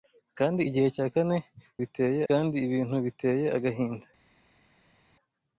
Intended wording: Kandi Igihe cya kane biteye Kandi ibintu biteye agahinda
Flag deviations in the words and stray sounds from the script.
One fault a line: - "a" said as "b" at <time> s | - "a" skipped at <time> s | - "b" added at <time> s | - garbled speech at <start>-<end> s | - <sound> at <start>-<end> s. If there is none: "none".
none